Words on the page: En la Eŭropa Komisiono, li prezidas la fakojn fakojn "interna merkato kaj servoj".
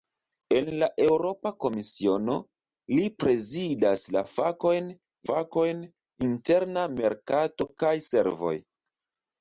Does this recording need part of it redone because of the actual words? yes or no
no